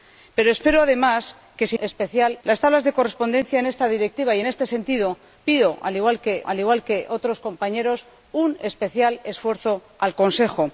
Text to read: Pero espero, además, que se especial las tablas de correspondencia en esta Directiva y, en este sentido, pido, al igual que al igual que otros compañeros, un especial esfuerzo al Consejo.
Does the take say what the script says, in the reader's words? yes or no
yes